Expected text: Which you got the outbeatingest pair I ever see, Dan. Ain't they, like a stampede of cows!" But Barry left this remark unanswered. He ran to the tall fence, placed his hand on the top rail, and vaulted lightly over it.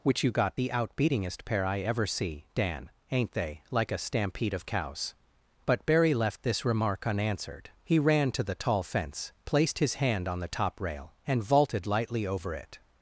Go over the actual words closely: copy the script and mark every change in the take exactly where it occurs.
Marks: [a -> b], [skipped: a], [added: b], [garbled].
Which you got the outbeatingest pair I ever see, Dan. Ain't they, like a stampede of cows!" But Barry left this remark unanswered. He ran to the tall fence, placed his hand on the top rail, and vaulted lightly over it.